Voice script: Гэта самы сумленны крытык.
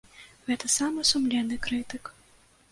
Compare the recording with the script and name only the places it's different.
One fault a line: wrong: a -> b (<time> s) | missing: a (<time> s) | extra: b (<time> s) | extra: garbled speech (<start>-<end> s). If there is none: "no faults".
no faults